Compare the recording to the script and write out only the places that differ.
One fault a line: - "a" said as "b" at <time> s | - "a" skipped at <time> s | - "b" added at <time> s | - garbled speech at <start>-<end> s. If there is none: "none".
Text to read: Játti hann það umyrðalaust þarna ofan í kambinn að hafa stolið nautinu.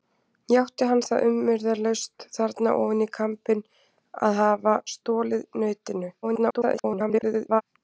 - garbled speech at 6.2-7.6 s